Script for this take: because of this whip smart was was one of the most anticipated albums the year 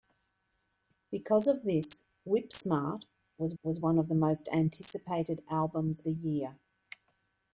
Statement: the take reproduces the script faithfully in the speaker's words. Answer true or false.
true